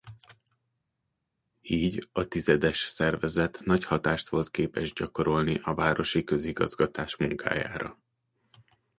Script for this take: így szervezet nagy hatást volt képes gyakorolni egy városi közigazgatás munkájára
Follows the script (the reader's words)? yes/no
no